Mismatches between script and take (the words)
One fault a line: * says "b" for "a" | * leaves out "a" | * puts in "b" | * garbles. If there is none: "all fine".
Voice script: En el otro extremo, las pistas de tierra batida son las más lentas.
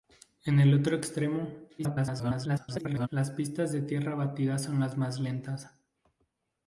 * garbles